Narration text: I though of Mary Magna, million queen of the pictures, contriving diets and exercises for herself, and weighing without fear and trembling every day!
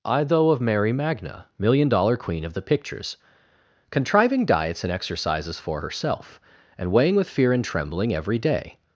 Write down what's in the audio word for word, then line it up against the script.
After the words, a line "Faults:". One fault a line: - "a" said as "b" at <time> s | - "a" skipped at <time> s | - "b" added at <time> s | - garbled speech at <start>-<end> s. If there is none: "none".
I though of Mary Magna, million dollar queen of the pictures, contriving diets and exercises for herself, and weighing with fear and trembling every day!
Faults:
- "dollar" added at 1.9 s
- "without" said as "with" at 7.2 s